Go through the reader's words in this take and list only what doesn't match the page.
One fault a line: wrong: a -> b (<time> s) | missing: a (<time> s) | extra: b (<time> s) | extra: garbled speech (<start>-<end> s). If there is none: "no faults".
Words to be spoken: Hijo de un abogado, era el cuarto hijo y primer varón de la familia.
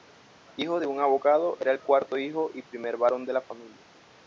no faults